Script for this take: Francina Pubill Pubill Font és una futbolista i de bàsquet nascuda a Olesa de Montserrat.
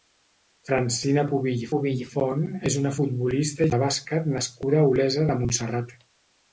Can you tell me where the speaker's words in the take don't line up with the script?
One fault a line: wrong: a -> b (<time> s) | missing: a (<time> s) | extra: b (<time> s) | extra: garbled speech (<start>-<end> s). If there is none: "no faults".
no faults